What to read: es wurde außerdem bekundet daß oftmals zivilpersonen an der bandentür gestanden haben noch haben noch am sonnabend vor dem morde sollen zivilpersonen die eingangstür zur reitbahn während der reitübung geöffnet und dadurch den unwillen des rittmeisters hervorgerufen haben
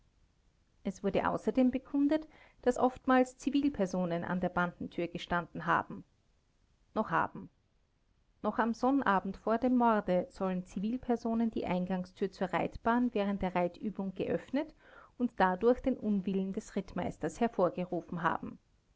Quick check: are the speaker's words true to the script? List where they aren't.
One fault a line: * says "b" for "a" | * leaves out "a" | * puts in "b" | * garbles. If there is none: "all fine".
all fine